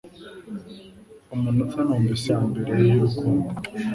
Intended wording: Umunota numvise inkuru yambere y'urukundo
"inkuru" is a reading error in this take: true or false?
true